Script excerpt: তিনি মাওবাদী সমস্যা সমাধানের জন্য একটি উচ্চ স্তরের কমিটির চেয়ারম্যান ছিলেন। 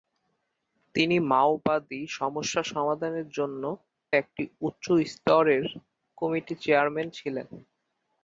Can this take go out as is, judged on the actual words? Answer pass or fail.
pass